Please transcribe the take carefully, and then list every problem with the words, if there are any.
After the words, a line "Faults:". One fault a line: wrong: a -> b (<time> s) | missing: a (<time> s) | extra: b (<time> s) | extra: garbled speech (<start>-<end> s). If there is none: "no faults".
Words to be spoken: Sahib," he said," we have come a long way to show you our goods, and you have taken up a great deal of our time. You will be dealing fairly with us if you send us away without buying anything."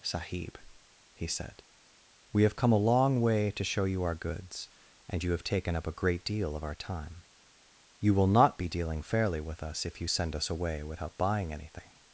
Sahib," he said," we have come a long way to show you our goods, and you have taken up a great deal of our time. You will not be dealing fairly with us if you send us away without buying anything."
Faults:
extra: not (8.3 s)